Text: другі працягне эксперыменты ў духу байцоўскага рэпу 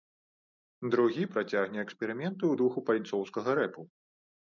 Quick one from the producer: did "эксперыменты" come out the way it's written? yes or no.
yes